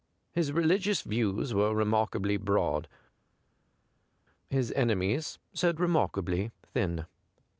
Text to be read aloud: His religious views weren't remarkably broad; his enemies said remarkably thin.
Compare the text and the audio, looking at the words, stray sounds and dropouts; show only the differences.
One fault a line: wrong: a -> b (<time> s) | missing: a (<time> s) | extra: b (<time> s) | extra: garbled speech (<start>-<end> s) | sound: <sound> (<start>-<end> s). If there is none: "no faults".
wrong: weren't -> were (1.5 s)